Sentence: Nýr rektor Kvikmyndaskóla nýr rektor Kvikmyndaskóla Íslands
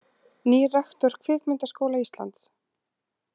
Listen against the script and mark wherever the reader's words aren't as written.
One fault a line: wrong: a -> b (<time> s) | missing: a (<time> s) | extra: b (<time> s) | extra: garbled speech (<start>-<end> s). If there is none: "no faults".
missing: nýr rektor Kvikmyndaskóla (2.0 s)